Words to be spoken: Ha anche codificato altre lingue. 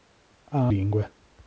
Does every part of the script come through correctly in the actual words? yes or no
no